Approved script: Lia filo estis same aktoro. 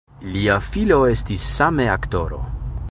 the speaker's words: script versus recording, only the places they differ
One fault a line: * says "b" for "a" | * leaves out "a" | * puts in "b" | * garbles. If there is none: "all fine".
all fine